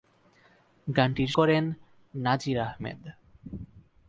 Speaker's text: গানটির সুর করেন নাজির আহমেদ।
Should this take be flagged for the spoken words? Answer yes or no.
yes